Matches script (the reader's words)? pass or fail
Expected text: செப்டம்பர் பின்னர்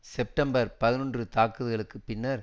fail